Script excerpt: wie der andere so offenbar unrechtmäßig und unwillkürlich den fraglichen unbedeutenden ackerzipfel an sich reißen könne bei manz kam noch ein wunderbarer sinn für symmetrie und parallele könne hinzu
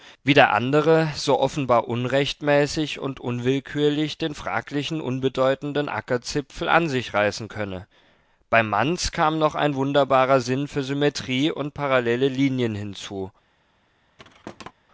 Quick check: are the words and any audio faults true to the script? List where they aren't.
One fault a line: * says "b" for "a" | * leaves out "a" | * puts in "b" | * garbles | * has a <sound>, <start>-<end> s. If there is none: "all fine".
* says "linien" for "könne"
* has a thud, 14.2-14.7 s